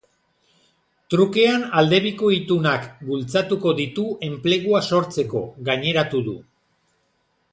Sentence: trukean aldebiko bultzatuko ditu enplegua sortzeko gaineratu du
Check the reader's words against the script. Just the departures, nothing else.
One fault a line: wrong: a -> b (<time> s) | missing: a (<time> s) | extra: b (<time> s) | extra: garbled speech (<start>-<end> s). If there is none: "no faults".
extra: itunak (2.4 s)